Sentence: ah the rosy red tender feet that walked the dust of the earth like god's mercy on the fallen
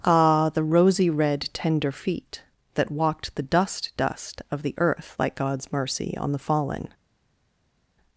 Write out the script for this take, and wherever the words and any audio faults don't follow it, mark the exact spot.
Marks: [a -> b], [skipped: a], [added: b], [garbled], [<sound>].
ah the rosy red tender feet that walked the dust [added: dust] of the earth like god's mercy on the fallen